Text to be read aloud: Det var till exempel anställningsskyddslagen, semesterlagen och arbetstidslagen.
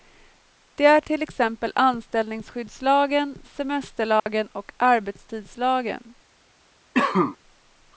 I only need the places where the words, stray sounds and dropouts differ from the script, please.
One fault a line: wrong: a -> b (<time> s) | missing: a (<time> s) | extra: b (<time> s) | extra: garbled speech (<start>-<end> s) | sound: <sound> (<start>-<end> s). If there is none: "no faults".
wrong: var -> är (0.8 s)
sound: dropout (4.2-4.3 s)
sound: cough (6.9-7.4 s)